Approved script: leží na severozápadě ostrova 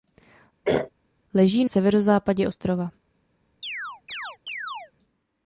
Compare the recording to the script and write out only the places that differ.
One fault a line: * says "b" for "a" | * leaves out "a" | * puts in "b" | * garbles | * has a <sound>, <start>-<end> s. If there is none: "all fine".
* has a throat clearing, 0.6-0.9 s
* leaves out "na"
* has a chirp, 3.6-4.9 s